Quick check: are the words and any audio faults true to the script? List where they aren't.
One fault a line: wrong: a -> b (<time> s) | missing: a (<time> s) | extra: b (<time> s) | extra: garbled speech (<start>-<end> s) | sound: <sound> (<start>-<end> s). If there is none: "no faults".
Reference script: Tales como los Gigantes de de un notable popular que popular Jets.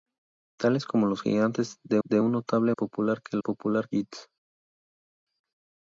no faults